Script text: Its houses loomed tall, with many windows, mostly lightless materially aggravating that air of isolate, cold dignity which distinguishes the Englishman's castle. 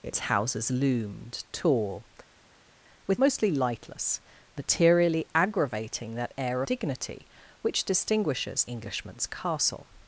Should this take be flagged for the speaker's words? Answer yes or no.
yes